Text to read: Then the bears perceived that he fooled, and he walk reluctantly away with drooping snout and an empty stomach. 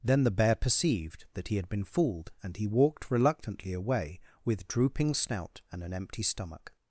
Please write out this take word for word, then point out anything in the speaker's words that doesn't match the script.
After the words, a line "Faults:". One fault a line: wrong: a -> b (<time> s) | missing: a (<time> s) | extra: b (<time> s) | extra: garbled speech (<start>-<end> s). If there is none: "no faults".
Then the bear perceived that he had been fooled, and he walked reluctantly away with drooping snout and an empty stomach.
Faults:
wrong: bears -> bear (0.3 s)
extra: had been (1.6 s)
wrong: walk -> walked (2.6 s)